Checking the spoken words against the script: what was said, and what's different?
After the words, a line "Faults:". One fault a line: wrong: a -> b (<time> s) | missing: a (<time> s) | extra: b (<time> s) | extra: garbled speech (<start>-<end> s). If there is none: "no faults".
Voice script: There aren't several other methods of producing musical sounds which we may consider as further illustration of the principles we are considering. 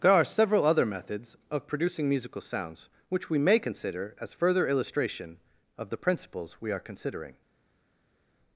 There are several other methods of producing musical sounds which we may consider as further illustration of the principles we are considering.
Faults:
wrong: aren't -> are (0.1 s)